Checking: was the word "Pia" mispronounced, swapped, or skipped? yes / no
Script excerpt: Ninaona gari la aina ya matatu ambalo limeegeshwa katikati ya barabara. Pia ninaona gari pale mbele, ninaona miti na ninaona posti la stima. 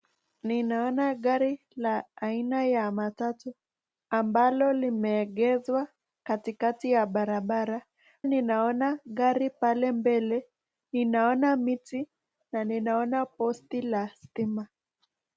yes